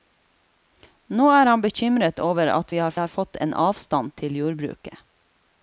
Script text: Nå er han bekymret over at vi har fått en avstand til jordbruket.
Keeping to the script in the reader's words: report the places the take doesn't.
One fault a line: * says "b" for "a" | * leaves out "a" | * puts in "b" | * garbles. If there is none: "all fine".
* puts in "har"